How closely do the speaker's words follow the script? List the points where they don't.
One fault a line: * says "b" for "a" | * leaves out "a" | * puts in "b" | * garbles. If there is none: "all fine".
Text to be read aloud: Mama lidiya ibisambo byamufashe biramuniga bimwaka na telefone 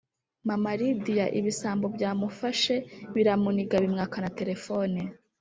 all fine